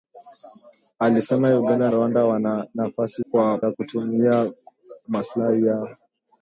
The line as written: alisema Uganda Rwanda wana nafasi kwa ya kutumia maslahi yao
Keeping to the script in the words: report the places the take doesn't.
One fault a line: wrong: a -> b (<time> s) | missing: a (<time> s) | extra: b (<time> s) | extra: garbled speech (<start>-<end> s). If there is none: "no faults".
no faults